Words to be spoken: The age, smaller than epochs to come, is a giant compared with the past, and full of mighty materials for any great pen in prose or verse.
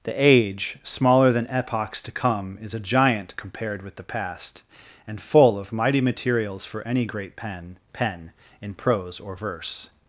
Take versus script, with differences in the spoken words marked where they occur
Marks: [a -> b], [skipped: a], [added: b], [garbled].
The age, smaller than epochs to come, is a giant compared with the past, and full of mighty materials for any great pen [added: pen] in prose or verse.